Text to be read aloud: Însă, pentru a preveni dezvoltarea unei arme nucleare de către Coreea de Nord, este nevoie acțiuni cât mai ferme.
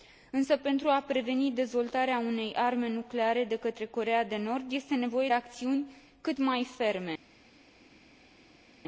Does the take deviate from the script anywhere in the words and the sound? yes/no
no